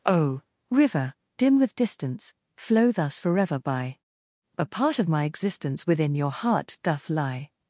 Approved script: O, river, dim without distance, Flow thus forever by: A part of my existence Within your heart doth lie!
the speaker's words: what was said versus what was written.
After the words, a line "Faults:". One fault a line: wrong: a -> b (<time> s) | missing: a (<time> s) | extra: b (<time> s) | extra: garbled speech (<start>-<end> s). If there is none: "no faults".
O, river, dim with distance, Flow thus forever by: A part of my existence Within your heart doth lie!
Faults:
wrong: without -> with (1.6 s)